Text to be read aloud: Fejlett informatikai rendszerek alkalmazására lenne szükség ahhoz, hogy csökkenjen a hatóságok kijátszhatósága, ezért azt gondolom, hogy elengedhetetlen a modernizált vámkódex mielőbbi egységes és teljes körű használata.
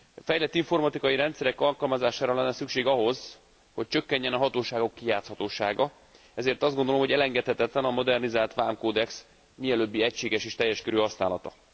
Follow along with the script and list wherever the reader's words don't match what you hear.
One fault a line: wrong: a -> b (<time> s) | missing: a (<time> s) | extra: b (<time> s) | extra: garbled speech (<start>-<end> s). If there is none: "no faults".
no faults